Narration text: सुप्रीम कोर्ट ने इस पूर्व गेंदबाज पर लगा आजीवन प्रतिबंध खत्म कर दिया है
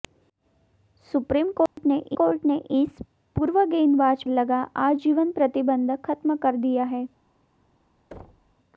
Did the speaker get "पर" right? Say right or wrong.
wrong